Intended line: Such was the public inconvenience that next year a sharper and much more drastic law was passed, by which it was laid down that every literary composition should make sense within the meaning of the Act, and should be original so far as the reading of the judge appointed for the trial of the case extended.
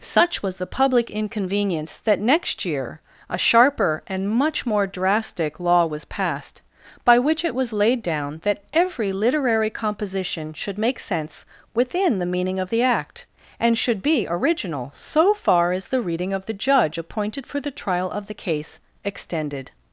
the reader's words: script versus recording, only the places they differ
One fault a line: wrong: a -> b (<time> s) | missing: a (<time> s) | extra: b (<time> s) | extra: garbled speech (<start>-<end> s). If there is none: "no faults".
no faults